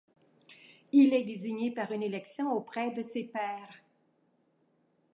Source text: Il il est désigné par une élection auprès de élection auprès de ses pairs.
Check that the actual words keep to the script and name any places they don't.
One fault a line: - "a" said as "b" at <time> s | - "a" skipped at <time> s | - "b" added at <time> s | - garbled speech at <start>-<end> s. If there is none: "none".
- "il" skipped at 1.1 s
- "élection auprès de" skipped at 3.0 s